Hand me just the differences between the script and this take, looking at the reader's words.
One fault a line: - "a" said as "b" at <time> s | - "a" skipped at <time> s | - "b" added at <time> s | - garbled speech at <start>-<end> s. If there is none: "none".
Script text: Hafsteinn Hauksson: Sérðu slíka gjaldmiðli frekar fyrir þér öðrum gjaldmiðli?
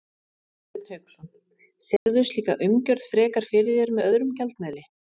- "gjaldmiðli" said as "umgjörð" at 2.7 s
- "með" added at 4.0 s